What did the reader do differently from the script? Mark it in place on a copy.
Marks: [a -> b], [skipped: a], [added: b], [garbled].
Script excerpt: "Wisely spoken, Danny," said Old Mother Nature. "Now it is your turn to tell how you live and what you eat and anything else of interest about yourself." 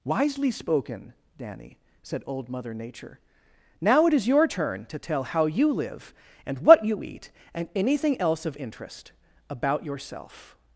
"Wisely spoken, Danny," said Old Mother Nature. "Now it is your turn to tell how you live and what you eat and anything else of interest about yourself."